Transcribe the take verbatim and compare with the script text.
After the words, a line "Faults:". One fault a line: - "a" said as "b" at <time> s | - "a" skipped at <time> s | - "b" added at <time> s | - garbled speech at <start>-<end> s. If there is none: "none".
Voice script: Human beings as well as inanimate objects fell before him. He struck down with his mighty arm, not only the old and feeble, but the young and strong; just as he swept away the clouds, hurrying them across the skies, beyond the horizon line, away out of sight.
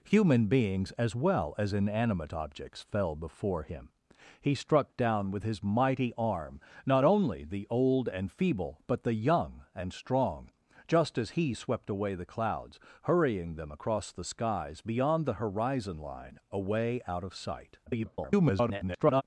Human beings as well as inanimate objects fell before him. He struck down with his mighty arm, not only the old and feeble, but the young and strong; just as he swept away the clouds, hurrying them across the skies, beyond the horizon line, away out of sight. [garbled]
Faults:
- garbled speech at 17.9-19.2 s